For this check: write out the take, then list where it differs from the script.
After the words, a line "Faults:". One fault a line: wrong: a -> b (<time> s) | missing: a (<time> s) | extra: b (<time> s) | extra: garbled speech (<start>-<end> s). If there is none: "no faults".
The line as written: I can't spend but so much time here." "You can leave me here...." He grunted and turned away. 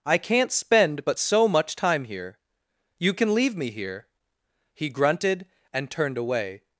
I can't spend but so much time here." "You can leave me here...." He grunted and turned away.
Faults:
no faults